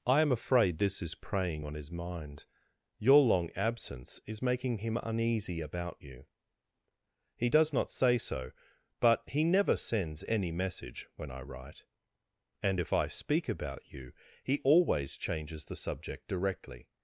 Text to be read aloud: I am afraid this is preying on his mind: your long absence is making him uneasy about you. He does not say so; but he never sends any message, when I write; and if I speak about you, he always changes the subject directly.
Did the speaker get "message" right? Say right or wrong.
right